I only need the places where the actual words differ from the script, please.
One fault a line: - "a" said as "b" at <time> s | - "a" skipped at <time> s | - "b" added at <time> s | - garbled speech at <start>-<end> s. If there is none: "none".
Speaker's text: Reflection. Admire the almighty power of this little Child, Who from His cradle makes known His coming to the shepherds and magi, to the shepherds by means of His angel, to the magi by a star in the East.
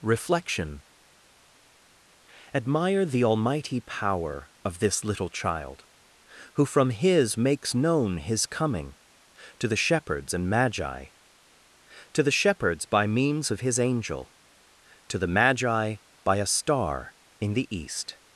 - "cradle" skipped at 7.4 s